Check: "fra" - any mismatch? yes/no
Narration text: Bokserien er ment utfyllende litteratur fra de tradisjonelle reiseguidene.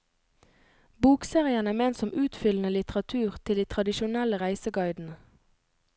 yes